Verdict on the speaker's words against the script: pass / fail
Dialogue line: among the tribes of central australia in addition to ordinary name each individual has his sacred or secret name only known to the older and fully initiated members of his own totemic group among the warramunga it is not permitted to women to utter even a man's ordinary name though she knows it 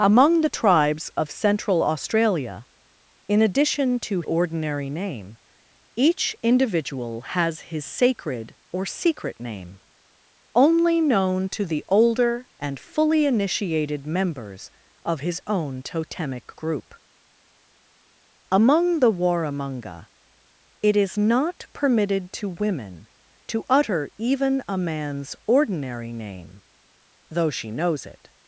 pass